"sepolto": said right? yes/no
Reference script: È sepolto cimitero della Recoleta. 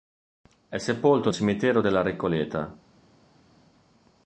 yes